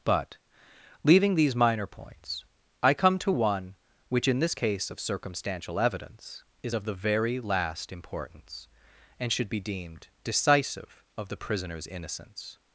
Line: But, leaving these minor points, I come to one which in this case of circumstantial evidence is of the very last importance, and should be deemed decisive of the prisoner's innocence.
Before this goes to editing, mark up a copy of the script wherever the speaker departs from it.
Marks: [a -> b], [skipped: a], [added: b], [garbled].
But, leaving these minor points, I come to one which in this case of circumstantial evidence is of the very last importance, and should be deemed decisive of the prisoner's innocence.